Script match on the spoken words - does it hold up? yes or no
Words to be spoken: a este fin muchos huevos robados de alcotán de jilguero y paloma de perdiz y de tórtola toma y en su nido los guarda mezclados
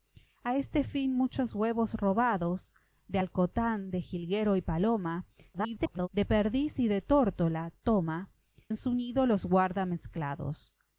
no